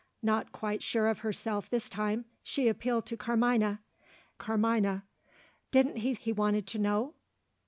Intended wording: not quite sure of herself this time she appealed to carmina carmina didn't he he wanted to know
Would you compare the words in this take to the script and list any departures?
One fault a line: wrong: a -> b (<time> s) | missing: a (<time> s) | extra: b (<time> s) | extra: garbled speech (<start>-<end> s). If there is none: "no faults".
no faults